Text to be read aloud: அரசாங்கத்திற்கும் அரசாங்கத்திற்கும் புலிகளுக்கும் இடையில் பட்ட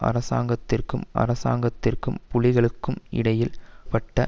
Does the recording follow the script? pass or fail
pass